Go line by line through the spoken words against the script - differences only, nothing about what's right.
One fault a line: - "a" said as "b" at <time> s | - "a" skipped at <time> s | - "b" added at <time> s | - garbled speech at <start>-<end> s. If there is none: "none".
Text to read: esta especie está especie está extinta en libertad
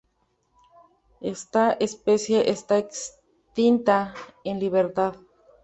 - "especie está" skipped at 2.8 s